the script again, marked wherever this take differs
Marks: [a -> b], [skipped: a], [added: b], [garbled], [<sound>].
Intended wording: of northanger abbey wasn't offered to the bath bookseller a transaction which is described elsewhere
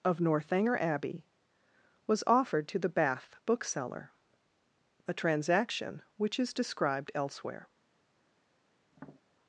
of northanger abbey [wasn't -> was] offered to the bath bookseller a transaction which is described elsewhere [tap]